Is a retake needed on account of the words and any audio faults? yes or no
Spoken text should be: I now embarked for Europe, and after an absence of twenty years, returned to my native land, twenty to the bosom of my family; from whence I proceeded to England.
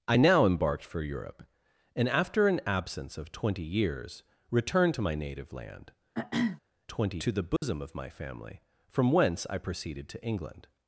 yes